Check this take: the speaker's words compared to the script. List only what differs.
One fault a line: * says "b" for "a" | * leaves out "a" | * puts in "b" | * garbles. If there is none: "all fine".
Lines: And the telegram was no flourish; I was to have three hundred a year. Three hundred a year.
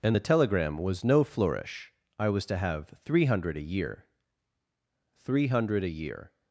all fine